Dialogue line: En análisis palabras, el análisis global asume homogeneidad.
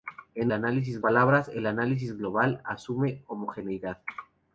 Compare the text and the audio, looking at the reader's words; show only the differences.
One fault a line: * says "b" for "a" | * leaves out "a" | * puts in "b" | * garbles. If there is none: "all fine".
all fine